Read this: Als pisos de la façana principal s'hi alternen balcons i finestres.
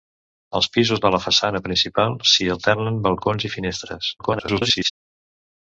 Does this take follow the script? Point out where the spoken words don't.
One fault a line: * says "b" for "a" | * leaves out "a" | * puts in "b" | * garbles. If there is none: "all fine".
* garbles